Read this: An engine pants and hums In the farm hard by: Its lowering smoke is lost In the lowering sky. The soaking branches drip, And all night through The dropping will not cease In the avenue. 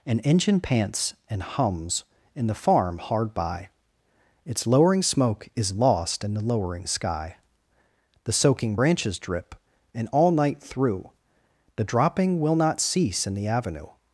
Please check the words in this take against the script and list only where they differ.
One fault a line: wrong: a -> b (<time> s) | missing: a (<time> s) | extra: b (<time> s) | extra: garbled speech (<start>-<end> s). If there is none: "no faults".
no faults